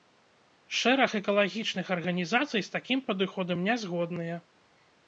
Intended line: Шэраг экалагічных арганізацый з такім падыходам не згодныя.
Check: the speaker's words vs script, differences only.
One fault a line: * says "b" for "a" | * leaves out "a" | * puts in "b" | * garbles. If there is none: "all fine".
all fine